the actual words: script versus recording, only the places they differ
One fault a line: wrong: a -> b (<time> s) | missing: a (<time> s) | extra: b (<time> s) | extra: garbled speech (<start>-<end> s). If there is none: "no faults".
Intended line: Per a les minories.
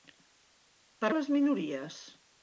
no faults